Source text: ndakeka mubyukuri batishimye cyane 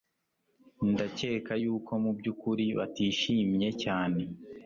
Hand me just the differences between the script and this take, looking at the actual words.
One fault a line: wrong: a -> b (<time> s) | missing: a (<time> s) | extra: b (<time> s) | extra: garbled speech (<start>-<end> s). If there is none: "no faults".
extra: yuko (1.6 s)